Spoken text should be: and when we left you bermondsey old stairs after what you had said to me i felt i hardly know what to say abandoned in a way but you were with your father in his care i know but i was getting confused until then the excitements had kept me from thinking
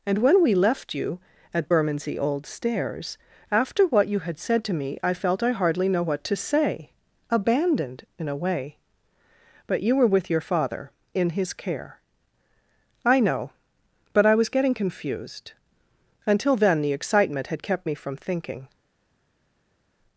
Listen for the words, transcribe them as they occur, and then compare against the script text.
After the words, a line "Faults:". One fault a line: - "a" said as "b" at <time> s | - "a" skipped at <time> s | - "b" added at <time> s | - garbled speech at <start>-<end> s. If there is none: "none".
and when we left you at bermondsey old stairs after what you had said to me i felt i hardly know what to say abandoned in a way but you were with your father in his care i know but i was getting confused until then the excitement had kept me from thinking
Faults:
- "at" added at 1.5 s
- "excitements" said as "excitement" at 16.9 s